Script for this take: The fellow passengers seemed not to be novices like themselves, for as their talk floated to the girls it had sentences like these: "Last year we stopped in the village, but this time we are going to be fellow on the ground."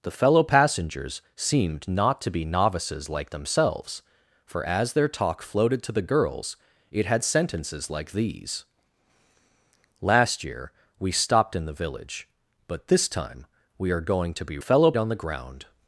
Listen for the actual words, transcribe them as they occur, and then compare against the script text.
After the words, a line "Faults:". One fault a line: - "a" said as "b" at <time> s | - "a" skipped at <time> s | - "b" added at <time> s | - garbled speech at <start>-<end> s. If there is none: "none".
The fellow passengers seemed not to be novices like themselves, for as their talk floated to the girls it had sentences like these: "Last year we stopped in the village, but this time we are going to be fellow on the ground."
Faults:
none